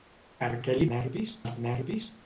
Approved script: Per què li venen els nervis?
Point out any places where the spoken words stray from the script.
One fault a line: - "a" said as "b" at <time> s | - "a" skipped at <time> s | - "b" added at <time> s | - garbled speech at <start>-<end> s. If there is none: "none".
- "venen" said as "nervis" at 0.9 s